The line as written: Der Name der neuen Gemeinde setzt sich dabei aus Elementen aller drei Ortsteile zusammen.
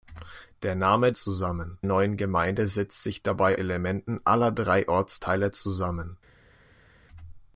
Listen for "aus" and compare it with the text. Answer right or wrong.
wrong